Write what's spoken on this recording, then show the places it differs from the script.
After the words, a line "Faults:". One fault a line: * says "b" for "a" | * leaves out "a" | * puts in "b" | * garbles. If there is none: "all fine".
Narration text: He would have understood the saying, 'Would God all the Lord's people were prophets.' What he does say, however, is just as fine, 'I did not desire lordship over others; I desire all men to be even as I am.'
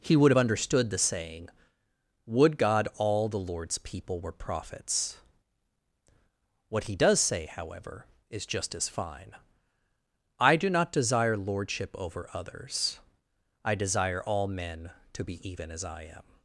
He would have understood the saying, 'Would God all the Lord's people were prophets.' What he does say, however, is just as fine, 'I do not desire lordship over others; I desire all men to be even as I am.'
Faults:
* says "do" for "did"